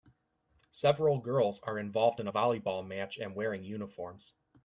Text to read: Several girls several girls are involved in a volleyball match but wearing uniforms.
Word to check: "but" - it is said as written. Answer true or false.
false